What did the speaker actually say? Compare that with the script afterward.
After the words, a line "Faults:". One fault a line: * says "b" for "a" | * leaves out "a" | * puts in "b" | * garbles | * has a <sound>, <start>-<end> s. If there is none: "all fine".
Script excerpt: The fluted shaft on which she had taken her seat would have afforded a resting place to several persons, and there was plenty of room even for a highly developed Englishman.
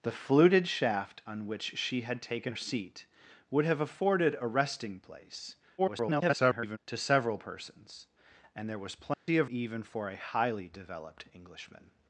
The fluted shaft on which she had taken seat would have afforded a resting place [garbled] to several persons, and there was plenty of even for a highly developed Englishman.
Faults:
* leaves out "her"
* garbles
* has a dropout, 9.1-9.3 s
* leaves out "room"